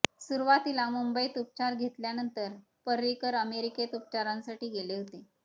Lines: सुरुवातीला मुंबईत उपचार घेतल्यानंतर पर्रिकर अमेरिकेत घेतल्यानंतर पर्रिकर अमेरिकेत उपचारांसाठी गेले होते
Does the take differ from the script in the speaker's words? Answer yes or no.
yes